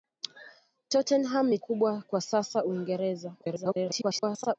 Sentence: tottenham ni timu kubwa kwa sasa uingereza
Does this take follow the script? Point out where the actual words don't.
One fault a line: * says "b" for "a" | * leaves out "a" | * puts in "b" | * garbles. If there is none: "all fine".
* leaves out "timu"
* garbles